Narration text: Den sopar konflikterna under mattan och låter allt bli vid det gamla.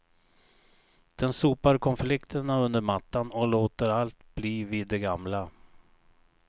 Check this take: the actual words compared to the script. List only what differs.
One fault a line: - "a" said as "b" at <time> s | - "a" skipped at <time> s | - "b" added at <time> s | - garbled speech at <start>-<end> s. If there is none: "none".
none